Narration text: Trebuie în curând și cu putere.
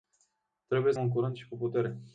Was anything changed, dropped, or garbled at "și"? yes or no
no